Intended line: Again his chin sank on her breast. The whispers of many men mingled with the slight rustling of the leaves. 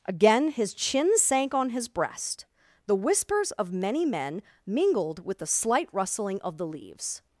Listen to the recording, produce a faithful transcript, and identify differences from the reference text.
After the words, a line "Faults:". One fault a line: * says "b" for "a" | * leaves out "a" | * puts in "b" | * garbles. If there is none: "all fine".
Again his chin sank on his breast. The whispers of many men mingled with the slight rustling of the leaves.
Faults:
* says "his" for "her"